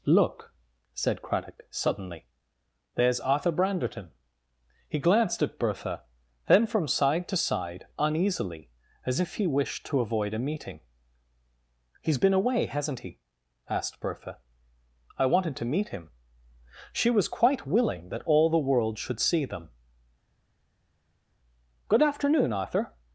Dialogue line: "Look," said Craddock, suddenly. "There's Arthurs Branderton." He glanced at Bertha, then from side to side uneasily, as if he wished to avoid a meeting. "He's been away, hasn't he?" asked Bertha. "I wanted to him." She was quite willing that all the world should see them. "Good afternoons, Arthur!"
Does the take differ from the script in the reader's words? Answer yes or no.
yes